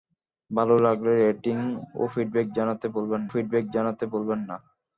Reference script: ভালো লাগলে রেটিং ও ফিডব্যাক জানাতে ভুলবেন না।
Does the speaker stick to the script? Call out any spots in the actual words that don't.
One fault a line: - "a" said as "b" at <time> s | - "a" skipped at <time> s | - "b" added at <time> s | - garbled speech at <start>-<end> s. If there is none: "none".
- "ফিডব্যাক জানাতে ভুলবেন" added at 3.3 s